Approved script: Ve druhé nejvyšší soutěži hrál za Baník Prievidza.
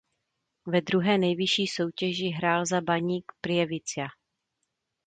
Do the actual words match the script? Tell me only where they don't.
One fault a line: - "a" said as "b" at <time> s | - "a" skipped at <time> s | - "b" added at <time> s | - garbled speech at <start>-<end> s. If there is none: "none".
none